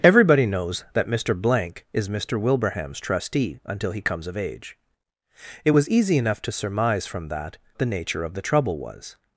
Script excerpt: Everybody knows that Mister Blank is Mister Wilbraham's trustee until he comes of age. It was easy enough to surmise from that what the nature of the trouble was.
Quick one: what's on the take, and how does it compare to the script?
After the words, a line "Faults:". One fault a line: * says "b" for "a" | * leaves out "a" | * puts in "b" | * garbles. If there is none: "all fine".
Everybody knows that Mister Blank is Mister Wilbraham's trustee until he comes of age. It was easy enough to surmise from that the nature of the trouble was.
Faults:
* leaves out "what"